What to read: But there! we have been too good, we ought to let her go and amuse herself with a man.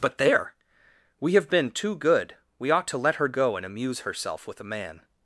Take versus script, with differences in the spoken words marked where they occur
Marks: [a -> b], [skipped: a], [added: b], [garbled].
But there! we have been too good, we ought to let her go and amuse herself with a man.